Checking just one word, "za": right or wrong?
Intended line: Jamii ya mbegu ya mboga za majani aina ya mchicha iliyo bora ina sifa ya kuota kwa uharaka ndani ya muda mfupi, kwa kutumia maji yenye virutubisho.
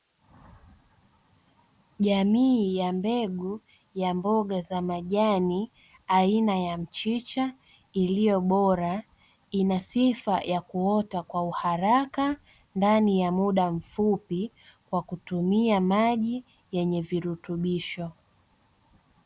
right